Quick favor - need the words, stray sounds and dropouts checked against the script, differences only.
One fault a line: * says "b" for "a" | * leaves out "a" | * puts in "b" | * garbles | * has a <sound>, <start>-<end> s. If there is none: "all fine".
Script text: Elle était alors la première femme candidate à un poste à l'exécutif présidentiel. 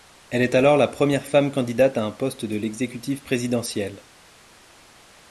* says "est" for "était"
* says "de" for "à"